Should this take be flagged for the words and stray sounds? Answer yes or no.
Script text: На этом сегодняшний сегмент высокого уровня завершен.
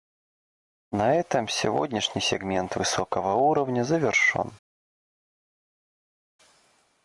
no